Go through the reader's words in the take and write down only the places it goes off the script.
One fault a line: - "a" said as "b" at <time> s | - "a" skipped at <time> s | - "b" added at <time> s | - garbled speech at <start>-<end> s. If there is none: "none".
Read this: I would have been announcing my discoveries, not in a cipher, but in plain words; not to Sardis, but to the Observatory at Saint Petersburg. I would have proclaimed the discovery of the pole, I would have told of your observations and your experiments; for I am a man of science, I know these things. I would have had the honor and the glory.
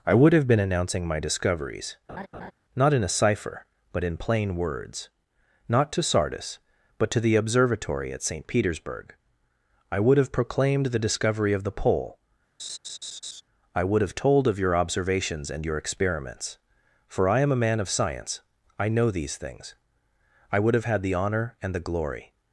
none